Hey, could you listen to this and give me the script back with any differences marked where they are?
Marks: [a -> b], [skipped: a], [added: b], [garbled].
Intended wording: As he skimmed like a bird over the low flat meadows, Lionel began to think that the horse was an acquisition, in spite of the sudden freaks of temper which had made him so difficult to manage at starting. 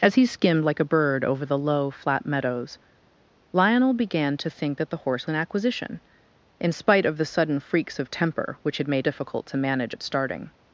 As he skimmed like a bird over the low flat meadows, Lionel began to think that the horse [skipped: was] an acquisition, in spite of the sudden freaks of temper which had made [skipped: him so] difficult to manage at starting.